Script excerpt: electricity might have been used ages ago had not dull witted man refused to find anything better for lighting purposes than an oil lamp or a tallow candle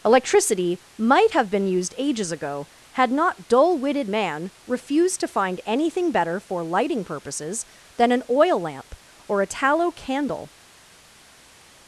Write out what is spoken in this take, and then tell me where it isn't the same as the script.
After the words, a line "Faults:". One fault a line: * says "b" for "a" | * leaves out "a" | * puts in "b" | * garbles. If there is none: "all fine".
electricity might have been used ages ago had not dull witted man refused to find anything better for lighting purposes than an oil lamp or a tallow candle
Faults:
all fine